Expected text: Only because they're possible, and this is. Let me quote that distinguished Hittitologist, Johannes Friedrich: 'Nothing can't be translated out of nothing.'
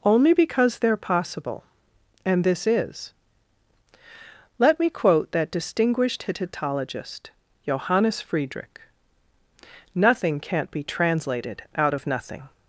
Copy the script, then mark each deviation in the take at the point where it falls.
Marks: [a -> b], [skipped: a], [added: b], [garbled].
Only because they're possible, and this is. Let me quote that distinguished Hittitologist, Johannes Friedrich: 'Nothing can't be translated out of nothing.'